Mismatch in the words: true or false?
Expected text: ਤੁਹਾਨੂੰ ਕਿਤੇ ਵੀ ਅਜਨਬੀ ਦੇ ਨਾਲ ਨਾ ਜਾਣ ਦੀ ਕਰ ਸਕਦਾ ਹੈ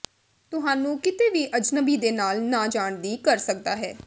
false